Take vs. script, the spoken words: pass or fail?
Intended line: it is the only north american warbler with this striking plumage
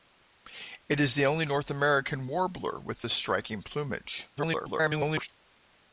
fail